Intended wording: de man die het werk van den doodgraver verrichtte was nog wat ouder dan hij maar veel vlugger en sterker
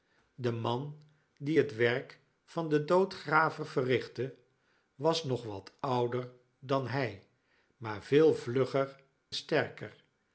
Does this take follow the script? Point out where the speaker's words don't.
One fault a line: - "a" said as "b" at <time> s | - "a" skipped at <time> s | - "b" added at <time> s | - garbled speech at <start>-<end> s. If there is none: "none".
- "en" skipped at 9.0 s